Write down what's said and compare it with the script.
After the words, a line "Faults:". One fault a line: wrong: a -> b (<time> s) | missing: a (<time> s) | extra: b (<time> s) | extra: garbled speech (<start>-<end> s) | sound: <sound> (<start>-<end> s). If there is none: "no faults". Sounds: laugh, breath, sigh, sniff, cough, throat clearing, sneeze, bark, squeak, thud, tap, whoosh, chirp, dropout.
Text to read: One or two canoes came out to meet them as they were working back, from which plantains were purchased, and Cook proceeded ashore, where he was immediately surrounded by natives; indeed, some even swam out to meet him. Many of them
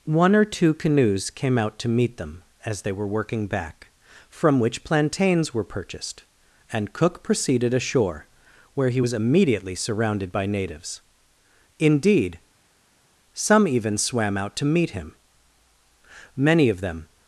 One or two canoes came out to meet them as they were working back, from which plantains were purchased, and Cook proceeded ashore, where he was immediately surrounded by natives; indeed, some even swam out to meet him. Many of them
Faults:
no faults